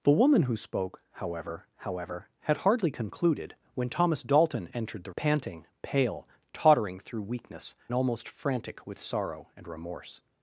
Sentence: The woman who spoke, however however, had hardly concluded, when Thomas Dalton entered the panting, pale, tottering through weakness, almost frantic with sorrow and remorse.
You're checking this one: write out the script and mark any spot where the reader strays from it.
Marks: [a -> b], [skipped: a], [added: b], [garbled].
The woman who spoke, however however, had hardly concluded, when Thomas Dalton entered the panting, pale, tottering through weakness, almost frantic with sorrow and remorse.